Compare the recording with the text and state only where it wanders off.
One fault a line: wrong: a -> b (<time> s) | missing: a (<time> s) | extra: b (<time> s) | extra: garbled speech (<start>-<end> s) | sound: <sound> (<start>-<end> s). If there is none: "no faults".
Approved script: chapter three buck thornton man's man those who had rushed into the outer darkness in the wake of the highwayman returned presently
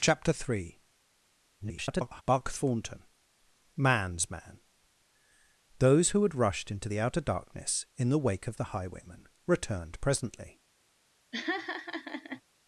extra: garbled speech (1.6-2.2 s)
sound: laugh (11.3-12.4 s)